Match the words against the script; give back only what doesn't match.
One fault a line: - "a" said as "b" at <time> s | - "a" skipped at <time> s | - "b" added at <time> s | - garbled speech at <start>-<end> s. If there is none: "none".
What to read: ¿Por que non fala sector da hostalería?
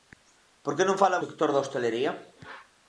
none